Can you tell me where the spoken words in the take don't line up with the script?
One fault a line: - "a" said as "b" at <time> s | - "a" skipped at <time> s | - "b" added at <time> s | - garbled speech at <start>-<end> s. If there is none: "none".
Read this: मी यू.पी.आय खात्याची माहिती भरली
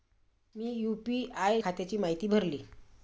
none